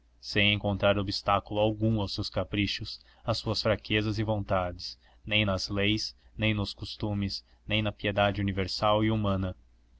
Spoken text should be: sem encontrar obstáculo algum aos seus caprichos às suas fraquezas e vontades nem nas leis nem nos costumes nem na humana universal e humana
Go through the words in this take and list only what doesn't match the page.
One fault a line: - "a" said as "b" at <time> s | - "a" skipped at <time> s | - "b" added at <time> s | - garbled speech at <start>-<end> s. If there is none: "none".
- "humana" said as "piedade" at 7.9 s